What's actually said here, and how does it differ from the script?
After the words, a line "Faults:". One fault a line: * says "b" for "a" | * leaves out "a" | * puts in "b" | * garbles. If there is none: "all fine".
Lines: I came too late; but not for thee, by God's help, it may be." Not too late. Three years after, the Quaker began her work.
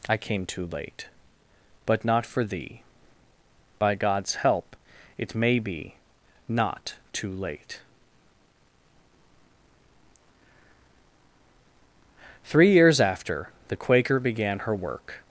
I came too late; but not for thee, by God's help, it may be." Not too late. Three years after, the Quaker began her work.
Faults:
all fine